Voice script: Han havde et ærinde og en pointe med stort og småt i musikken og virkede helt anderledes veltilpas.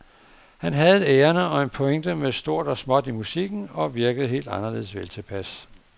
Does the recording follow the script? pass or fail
pass